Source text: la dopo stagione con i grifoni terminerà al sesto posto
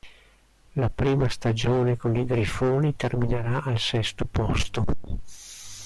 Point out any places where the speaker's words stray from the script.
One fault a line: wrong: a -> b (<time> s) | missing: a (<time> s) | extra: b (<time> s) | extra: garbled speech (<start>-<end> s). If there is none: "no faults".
wrong: dopo -> prima (0.9 s)